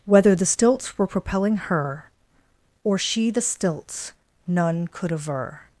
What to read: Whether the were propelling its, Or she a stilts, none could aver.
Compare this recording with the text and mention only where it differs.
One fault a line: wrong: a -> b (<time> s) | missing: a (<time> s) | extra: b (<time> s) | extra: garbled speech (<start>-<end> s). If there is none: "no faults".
extra: stilts (0.5 s)
wrong: its -> her (1.6 s)
wrong: a -> the (3.3 s)